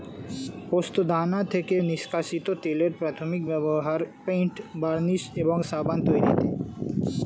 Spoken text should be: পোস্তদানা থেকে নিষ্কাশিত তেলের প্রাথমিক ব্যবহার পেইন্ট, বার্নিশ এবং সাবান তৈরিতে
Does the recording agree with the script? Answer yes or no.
yes